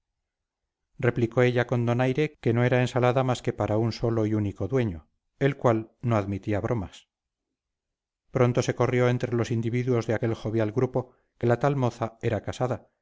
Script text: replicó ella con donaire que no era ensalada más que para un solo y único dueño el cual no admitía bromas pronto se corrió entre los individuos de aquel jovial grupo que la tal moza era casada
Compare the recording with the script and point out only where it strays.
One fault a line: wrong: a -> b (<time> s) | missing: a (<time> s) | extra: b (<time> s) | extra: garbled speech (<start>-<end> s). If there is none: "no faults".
no faults